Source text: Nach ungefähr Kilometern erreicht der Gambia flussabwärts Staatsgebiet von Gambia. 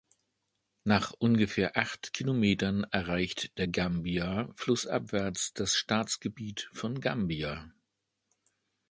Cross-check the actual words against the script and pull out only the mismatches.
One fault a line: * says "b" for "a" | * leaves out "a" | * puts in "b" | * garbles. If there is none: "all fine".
* puts in "acht"
* puts in "das"